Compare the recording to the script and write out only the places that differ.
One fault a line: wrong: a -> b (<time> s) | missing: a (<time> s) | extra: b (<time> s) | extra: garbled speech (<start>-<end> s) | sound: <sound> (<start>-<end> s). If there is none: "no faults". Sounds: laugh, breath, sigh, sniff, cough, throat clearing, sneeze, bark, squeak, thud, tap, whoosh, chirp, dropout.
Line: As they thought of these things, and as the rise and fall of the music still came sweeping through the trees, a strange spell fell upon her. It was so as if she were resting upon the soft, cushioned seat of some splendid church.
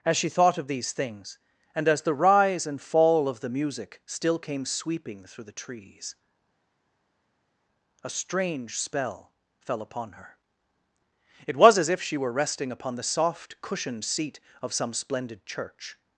wrong: they -> she (0.2 s)
missing: so (11.8 s)